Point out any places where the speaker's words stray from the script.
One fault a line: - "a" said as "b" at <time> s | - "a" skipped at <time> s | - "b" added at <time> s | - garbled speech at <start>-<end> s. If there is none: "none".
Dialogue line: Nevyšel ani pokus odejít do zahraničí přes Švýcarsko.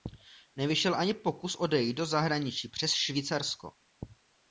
none